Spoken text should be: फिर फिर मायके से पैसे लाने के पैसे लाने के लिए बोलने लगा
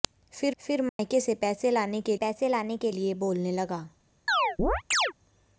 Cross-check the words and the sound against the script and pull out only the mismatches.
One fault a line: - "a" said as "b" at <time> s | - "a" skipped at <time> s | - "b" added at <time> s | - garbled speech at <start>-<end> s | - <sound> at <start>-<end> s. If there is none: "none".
- dropout at 0.9-1.0 s
- chirp at 4.3-5.1 s